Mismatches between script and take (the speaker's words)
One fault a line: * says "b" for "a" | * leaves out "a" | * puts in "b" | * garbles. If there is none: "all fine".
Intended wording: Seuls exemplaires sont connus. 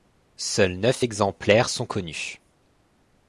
* puts in "neuf"